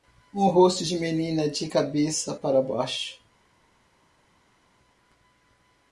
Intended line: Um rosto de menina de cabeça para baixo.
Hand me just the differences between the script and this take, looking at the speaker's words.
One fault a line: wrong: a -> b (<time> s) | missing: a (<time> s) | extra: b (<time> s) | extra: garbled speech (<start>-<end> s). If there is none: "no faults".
no faults